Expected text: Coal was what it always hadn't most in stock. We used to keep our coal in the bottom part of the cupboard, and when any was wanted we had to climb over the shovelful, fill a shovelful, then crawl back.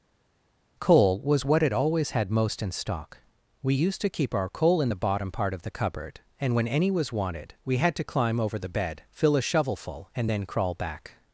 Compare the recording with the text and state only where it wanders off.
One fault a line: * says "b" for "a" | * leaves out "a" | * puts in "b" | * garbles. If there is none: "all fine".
* says "had" for "hadn't"
* says "bed" for "shovelful"
* puts in "and"